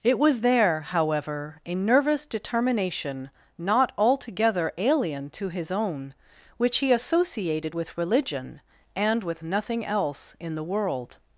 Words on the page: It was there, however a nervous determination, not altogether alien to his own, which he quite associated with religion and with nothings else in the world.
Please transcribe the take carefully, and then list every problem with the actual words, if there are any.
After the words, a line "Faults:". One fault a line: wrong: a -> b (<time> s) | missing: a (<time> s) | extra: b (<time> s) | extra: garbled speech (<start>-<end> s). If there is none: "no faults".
It was there, however a nervous determination, not altogether alien to his own, which he associated with religion and with nothing else in the world.
Faults:
missing: quite (6.9 s)
wrong: nothings -> nothing (9.4 s)